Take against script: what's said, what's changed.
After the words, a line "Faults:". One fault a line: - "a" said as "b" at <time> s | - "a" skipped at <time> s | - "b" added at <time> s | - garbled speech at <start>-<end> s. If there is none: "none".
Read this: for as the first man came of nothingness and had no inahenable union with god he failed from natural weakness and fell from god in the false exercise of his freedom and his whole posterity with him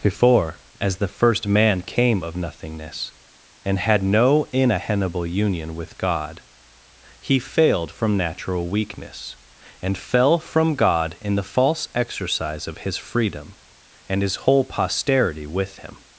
before as the first man came of nothingness and had no inahenable union with god he failed from natural weakness and fell from god in the false exercise of his freedom and his whole posterity with him
Faults:
- "for" said as "before" at 0.0 s